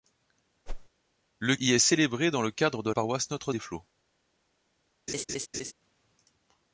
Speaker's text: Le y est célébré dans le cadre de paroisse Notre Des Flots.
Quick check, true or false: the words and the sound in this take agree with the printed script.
false